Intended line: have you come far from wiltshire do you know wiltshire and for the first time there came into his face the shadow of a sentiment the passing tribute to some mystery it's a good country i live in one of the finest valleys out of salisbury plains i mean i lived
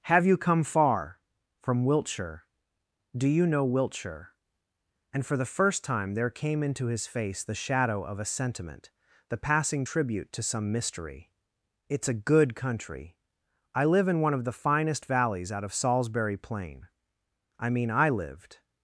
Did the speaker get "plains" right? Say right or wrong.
wrong